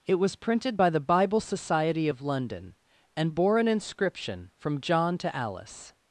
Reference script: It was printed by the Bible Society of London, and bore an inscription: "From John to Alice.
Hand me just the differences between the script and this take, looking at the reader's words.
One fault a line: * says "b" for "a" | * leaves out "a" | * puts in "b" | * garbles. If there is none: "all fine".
all fine